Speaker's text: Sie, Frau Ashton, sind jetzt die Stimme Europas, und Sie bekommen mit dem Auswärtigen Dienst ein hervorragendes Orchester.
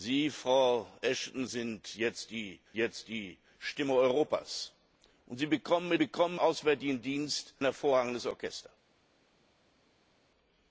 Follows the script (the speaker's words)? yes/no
no